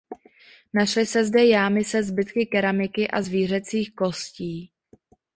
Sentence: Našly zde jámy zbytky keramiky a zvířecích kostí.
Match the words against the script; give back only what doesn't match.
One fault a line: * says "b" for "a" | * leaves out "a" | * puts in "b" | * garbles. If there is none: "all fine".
* puts in "se"
* puts in "se"